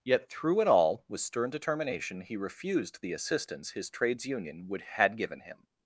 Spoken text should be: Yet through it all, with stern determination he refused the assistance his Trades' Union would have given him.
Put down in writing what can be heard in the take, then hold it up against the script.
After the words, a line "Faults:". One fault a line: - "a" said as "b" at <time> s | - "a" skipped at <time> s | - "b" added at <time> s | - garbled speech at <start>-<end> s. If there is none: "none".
Yet through it all, with stern determination he refused the assistance his Trades' Union would had given him.
Faults:
- "have" said as "had" at 4.8 s